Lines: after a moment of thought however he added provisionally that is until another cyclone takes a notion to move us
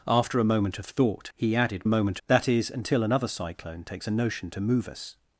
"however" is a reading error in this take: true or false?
true